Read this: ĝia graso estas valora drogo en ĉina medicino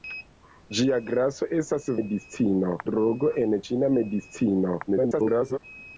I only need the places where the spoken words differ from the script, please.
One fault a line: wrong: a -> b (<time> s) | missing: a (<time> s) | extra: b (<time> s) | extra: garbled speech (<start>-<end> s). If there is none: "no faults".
wrong: valora -> medicino (2.0 s)
extra: garbled speech (4.9-5.6 s)